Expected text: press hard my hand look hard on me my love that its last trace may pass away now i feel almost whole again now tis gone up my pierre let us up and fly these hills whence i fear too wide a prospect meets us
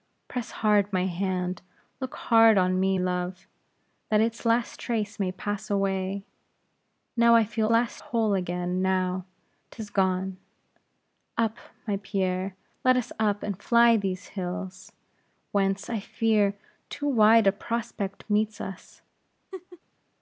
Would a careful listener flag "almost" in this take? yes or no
yes